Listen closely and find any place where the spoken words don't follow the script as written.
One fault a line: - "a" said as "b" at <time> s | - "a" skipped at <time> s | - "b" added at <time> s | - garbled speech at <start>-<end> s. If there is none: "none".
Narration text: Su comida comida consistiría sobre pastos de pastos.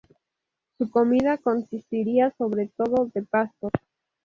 - "comida" skipped at 1.4 s
- "pastos" said as "todo" at 2.8 s